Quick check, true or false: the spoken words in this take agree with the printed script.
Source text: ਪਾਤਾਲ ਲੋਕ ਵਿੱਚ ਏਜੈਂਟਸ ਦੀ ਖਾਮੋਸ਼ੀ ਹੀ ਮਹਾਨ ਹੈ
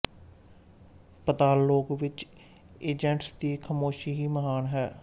true